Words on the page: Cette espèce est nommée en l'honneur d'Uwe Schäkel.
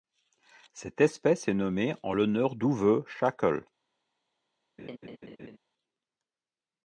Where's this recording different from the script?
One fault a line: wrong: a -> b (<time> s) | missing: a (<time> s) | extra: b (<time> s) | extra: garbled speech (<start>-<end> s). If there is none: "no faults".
no faults